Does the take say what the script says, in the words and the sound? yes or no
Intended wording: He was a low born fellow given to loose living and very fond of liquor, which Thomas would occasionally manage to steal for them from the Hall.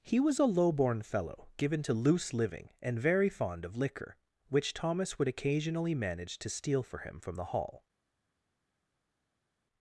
no